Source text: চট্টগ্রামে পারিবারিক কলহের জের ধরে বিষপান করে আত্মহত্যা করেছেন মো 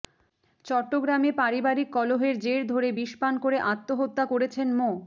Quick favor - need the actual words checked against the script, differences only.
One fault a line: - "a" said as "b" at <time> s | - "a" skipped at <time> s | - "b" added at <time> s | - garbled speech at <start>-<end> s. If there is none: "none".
none